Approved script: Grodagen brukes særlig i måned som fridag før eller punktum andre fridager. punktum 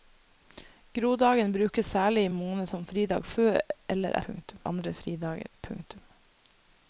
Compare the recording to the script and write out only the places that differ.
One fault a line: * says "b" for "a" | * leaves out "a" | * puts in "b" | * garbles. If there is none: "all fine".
all fine